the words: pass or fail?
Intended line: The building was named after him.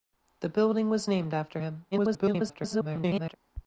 fail